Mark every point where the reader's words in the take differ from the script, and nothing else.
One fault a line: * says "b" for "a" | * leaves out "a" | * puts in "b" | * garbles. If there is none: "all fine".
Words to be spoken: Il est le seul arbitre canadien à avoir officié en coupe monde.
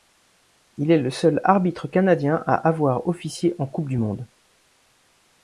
* puts in "du"